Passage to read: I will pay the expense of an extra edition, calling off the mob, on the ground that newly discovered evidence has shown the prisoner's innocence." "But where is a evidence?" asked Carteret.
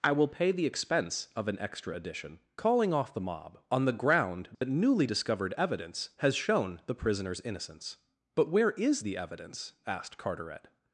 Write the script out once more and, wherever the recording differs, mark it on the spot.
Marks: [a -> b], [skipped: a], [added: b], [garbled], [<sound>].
I will pay the expense of an extra edition, calling off the mob, on the ground that [dropout] newly discovered evidence has shown the prisoner's innocence." "But where is [a -> the] evidence?" asked Carteret.